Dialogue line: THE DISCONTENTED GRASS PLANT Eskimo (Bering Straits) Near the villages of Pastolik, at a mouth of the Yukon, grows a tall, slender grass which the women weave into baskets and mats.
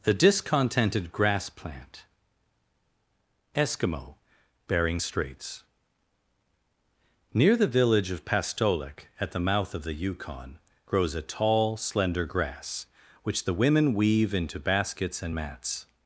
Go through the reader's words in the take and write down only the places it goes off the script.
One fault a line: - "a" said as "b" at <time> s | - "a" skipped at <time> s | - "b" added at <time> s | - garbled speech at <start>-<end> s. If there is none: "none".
- "villages" said as "village" at 7.7 s
- "a" said as "the" at 9.3 s